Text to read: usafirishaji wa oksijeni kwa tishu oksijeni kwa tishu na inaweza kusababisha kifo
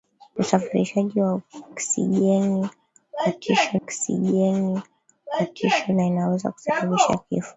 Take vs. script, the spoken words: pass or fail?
pass